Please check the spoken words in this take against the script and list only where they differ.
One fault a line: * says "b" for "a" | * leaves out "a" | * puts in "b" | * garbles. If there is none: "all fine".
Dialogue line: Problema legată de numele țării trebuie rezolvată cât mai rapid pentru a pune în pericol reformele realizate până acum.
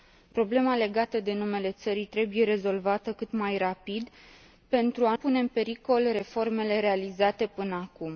all fine